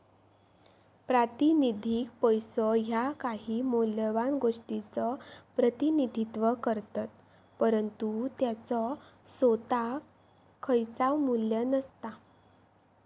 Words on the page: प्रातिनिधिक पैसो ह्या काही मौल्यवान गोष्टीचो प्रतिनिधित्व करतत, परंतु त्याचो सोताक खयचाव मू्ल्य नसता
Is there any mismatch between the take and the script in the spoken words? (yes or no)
no